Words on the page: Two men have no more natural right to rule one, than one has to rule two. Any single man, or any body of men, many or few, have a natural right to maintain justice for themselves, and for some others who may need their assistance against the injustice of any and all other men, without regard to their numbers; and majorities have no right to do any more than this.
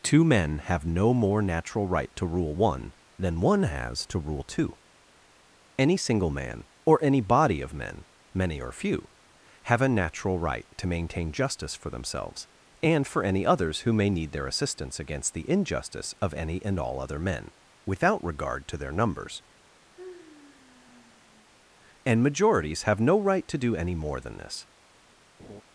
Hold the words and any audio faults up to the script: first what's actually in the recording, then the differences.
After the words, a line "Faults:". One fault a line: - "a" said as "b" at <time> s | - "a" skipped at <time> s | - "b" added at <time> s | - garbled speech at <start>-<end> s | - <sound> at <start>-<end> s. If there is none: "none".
Two men have no more natural right to rule one, than one has to rule two. Any single man, or any body of men, many or few, have a natural right to maintain justice for themselves, and for any others who may need their assistance against the injustice of any and all other men, without regard to their numbers; and majorities have no right to do any more than this.
Faults:
- "some" said as "any" at 13.2 s
- sigh at 19.9-21.5 s
- laugh at 25.4-25.6 s